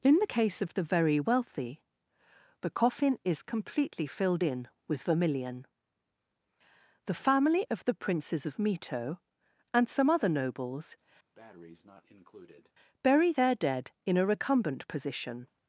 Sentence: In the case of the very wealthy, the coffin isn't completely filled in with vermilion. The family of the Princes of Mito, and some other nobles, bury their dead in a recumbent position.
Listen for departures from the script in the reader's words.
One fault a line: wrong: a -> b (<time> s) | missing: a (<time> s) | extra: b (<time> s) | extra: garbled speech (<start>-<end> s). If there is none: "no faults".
wrong: isn't -> is (3.2 s)